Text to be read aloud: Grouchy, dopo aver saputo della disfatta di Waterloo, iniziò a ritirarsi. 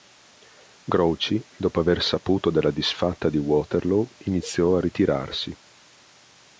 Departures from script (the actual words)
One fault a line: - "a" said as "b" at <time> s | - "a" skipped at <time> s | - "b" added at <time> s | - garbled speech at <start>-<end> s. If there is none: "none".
none